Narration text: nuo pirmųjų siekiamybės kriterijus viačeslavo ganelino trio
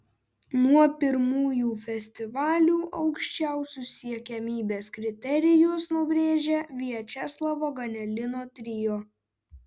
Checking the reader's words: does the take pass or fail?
fail